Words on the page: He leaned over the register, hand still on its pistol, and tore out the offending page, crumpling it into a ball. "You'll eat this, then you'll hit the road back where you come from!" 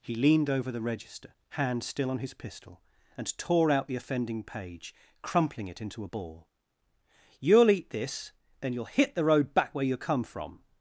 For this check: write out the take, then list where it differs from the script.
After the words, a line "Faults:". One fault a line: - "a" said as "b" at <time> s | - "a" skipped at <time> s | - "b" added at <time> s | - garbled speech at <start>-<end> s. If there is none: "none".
He leaned over the register, hand still on his pistol, and tore out the offending page, crumpling it into a ball. "You'll eat this, then you'll hit the road back where you come from!"
Faults:
- "its" said as "his" at 2.2 s